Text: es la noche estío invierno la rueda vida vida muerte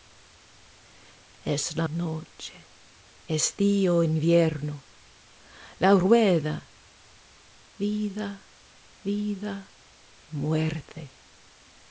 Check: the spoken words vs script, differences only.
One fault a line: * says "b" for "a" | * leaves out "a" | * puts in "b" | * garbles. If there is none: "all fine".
all fine